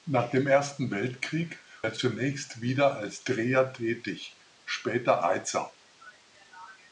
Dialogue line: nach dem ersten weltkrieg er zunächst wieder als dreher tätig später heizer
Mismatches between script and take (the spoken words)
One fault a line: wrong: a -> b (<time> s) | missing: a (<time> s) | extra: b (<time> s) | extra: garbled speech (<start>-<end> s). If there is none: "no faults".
no faults